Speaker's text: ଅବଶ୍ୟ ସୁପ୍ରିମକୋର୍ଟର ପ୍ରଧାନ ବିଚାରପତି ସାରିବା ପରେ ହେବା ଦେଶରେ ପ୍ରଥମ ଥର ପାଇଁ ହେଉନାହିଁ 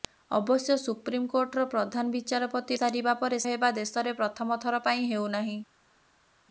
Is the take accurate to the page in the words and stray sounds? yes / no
yes